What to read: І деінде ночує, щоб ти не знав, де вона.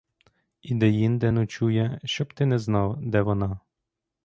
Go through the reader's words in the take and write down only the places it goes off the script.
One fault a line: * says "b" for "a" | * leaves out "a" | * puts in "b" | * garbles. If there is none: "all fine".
all fine